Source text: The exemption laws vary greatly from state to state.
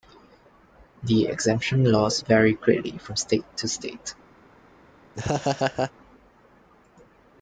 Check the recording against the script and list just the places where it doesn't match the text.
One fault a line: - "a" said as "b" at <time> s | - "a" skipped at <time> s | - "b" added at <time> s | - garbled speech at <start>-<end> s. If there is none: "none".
none